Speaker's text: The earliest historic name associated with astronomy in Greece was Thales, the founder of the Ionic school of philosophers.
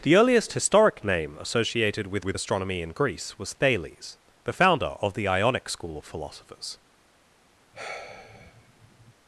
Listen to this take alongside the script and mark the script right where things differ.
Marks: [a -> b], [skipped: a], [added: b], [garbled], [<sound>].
The earliest historic name associated with [added: with] astronomy in Greece was Thales, the founder of the Ionic school of philosophers. [sigh]